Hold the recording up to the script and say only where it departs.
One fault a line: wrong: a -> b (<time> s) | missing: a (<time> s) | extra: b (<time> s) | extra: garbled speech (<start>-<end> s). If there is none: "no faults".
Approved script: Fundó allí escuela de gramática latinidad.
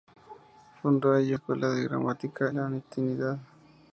no faults